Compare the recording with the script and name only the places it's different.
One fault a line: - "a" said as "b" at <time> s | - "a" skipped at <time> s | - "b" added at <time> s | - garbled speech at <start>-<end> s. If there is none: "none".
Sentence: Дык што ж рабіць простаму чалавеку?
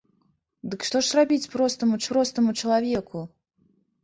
- "простаму" added at 2.1 s